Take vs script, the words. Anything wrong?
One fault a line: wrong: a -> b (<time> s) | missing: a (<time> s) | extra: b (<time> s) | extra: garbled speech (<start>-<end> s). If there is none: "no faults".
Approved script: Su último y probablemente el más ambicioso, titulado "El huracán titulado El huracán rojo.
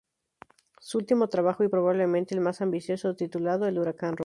extra: trabajo (1.3 s)
missing: titulado El huracán (4.1 s)